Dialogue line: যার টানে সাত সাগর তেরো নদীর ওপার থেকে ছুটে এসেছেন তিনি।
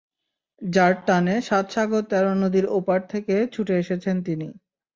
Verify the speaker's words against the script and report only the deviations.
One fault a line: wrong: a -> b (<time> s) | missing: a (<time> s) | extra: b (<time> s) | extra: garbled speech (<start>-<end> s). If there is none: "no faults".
no faults